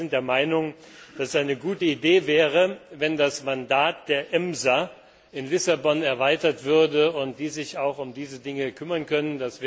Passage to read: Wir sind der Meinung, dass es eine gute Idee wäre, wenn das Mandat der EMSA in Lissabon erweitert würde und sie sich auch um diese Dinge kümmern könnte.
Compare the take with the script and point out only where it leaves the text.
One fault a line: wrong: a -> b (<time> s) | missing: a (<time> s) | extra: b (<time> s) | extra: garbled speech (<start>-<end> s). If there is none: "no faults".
no faults